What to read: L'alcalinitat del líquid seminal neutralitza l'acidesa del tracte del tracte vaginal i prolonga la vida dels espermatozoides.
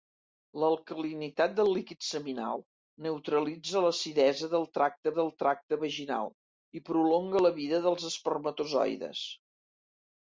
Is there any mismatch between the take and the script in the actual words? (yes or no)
no